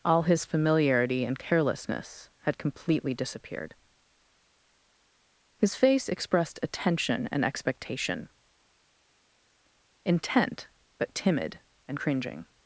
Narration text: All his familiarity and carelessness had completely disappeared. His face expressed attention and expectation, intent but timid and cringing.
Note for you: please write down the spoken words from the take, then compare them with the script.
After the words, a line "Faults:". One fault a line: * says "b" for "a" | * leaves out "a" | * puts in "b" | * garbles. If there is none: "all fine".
All his familiarity and carelessness had completely disappeared. His face expressed attention and expectation, intent but timid and cringing.
Faults:
all fine